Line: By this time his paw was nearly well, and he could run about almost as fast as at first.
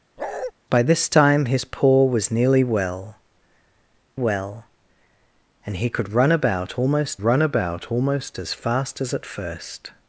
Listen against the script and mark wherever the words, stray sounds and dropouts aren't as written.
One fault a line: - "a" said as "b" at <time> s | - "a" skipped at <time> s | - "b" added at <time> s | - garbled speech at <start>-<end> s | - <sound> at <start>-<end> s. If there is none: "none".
- bark at 0.2-0.5 s
- "well" added at 4.1 s
- "run about almost" added at 7.2 s